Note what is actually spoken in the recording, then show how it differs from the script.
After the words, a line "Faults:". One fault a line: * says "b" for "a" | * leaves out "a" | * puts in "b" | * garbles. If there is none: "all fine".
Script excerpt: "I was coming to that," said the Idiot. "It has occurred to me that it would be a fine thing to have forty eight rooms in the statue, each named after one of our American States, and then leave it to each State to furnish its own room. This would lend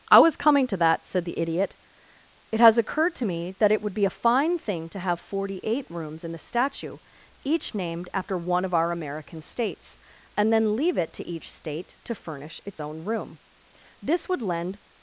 "I was coming to that," said the Idiot. "It has occurred to me that it would be a fine thing to have forty eight rooms in the statue, each named after one of our American States, and then leave it to each State to furnish its own room. This would lend
Faults:
all fine